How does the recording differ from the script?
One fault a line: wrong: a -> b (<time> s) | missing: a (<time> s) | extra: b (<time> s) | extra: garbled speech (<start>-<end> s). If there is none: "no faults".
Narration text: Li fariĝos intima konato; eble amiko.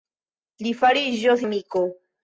missing: intima konato eble (1.4 s)